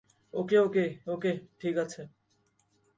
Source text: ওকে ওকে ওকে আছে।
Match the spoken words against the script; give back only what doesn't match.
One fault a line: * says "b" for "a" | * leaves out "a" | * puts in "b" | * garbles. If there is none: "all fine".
* puts in "ঠিক"